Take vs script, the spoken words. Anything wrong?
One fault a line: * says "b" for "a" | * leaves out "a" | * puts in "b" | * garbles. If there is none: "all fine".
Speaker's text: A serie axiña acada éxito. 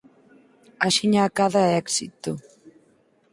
* leaves out "serie"